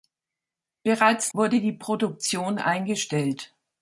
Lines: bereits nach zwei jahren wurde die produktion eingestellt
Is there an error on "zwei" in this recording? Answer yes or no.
yes